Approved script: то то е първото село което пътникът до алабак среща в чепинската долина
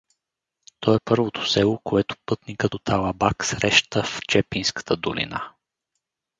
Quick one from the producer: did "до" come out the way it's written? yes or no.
no